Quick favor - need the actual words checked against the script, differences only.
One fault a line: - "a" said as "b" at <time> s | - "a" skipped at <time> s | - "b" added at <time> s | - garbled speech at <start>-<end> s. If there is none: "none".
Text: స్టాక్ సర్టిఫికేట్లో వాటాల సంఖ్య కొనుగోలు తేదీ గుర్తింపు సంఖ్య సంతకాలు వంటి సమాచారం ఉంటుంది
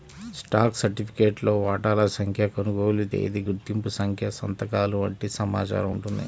none